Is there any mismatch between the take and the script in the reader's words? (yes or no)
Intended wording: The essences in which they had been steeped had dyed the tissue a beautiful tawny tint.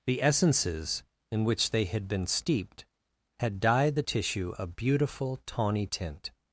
no